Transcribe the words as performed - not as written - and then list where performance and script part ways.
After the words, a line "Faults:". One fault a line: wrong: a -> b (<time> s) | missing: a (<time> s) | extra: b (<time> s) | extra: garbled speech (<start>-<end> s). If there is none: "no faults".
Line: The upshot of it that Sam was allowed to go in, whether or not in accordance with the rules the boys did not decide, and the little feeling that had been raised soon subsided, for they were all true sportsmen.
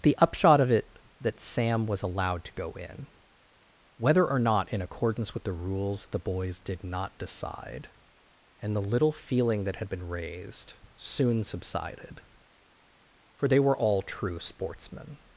The upshot of it that Sam was allowed to go in, whether or not in accordance with the rules the boys did not decide, and the little feeling that had been raised soon subsided, for they were all true sportsmen.
Faults:
no faults